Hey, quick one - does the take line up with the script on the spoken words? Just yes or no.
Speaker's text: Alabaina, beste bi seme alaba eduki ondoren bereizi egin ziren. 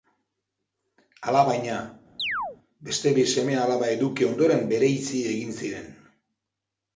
yes